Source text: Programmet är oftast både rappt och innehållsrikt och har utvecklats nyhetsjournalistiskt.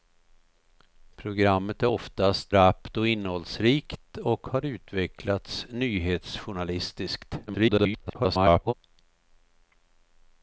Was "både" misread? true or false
true